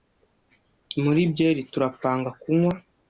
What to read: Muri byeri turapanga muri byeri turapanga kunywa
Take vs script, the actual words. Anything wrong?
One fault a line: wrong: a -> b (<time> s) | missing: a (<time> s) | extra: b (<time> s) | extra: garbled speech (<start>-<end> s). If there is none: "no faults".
missing: muri byeri turapanga (2.3 s)